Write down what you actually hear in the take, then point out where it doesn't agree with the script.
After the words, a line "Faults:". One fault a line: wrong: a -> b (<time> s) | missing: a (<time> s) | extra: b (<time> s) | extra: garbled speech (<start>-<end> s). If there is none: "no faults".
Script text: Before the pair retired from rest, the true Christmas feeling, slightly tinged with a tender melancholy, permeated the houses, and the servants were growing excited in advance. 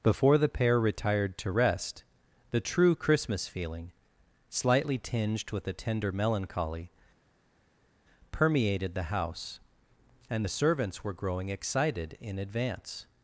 Before the pair retired to rest, the true Christmas feeling, slightly tinged with a tender melancholy, permeated the house, and the servants were growing excited in advance.
Faults:
wrong: from -> to (1.4 s)
wrong: houses -> house (9.0 s)